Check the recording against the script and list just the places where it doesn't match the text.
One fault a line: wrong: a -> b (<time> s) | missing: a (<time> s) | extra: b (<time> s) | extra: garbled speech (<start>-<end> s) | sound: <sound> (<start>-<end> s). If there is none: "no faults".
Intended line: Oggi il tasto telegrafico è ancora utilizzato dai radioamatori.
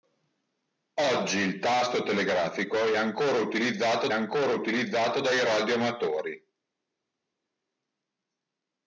extra: ancora utilizzato (4.1 s)